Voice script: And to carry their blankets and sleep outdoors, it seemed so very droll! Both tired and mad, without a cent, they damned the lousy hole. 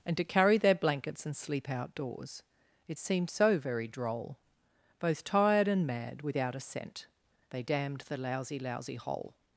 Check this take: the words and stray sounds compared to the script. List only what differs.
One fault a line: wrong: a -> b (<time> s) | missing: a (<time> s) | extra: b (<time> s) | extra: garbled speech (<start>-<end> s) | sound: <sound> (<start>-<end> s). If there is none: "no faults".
extra: lousy (8.6 s)